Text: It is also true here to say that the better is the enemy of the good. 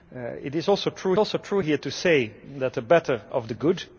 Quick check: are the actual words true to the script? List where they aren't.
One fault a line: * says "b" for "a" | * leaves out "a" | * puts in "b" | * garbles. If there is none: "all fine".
* puts in "also true"
* leaves out "is the enemy"